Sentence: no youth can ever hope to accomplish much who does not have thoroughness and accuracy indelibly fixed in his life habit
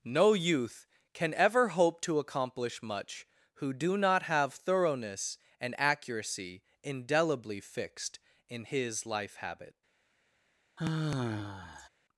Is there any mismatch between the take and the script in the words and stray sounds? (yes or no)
yes